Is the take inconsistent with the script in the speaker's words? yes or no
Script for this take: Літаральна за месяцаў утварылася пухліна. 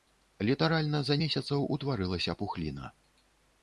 no